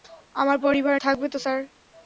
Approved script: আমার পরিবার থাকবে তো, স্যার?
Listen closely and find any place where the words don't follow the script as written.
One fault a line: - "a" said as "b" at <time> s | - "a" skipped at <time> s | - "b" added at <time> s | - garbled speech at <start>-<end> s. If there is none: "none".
none